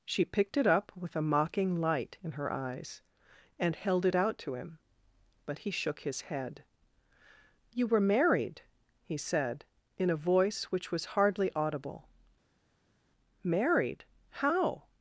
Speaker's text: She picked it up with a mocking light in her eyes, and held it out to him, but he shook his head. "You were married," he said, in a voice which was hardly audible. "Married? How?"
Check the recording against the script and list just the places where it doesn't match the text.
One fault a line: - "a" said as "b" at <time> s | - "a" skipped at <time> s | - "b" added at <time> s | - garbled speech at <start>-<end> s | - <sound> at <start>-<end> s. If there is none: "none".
none